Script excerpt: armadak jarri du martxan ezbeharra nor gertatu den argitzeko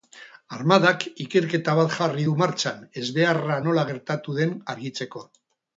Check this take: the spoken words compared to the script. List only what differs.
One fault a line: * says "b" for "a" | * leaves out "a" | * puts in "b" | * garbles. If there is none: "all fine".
* puts in "ikerketa bat"
* says "nola" for "nor"